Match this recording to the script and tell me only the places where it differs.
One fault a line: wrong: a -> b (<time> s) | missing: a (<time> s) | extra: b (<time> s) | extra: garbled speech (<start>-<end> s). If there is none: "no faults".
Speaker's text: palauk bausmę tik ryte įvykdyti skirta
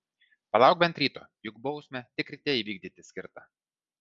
extra: bent ryto juk (0.8 s)